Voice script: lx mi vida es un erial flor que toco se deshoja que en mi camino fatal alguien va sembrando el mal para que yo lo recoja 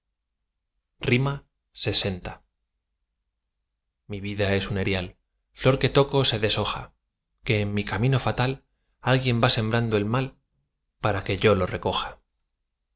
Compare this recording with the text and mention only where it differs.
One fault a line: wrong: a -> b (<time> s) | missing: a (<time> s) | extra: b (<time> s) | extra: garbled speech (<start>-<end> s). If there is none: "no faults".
no faults